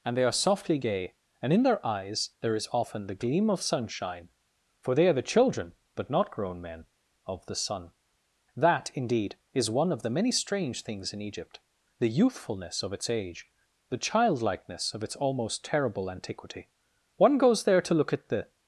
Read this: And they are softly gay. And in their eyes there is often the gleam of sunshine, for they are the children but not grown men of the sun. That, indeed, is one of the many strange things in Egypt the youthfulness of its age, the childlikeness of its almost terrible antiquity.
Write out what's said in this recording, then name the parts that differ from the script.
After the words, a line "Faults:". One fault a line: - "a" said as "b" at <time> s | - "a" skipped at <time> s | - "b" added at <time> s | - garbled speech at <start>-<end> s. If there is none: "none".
And they are softly gay. And in their eyes there is often the gleam of sunshine, for they are the children but not grown men of the sun. That, indeed, is one of the many strange things in Egypt the youthfulness of its age, the childlikeness of its almost terrible antiquity. One goes there to look at the
Faults:
- "One goes there to look at the" added at 17.2 s